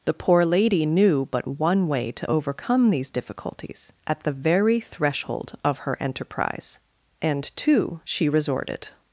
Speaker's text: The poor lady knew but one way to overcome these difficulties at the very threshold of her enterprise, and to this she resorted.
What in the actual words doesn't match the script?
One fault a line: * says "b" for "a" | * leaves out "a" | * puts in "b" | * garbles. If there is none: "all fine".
* leaves out "this"